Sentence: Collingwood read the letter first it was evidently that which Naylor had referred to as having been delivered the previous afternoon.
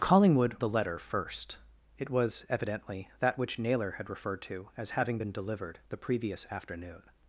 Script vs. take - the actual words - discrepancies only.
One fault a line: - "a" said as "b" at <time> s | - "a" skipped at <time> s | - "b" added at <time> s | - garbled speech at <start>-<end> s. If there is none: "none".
- "read" skipped at 0.6 s